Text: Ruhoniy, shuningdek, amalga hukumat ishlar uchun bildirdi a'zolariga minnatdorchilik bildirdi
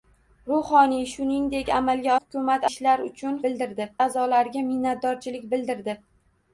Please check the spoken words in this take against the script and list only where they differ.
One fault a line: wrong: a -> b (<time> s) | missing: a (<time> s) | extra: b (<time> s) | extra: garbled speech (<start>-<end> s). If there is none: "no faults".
no faults